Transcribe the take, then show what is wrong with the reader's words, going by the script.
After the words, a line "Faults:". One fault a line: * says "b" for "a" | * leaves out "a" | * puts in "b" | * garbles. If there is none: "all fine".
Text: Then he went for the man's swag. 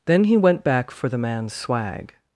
Then he went back for the man's swag.
Faults:
* puts in "back"